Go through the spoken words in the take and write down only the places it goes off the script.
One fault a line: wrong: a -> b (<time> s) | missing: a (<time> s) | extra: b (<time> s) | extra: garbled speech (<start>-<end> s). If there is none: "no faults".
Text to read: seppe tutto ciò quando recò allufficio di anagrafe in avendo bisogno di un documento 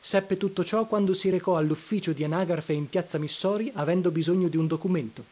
extra: si (1.1 s)
extra: piazza missori (2.9 s)